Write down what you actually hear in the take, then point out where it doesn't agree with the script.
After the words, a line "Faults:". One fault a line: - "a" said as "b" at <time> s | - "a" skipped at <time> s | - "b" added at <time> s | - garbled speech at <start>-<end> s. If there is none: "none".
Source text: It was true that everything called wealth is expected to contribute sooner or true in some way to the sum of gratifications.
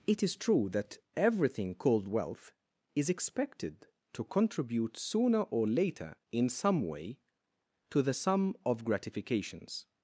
It is true that everything called wealth is expected to contribute sooner or later in some way to the sum of gratifications.
Faults:
- "was" said as "is" at 0.2 s
- "true" said as "later" at 5.7 s